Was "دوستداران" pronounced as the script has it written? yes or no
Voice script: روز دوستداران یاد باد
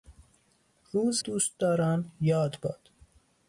yes